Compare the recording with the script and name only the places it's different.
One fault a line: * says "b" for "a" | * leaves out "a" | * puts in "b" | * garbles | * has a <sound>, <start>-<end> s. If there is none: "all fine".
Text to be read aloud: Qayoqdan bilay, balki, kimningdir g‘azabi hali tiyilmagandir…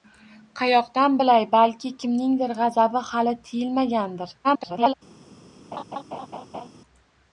* garbles
* has a laugh, 5.7-6.7 s